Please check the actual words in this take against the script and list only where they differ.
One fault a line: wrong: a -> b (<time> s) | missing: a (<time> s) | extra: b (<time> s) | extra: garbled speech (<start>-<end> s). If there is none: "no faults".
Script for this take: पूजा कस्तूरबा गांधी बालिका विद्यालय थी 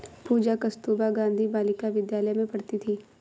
extra: में पढ़ती (2.3 s)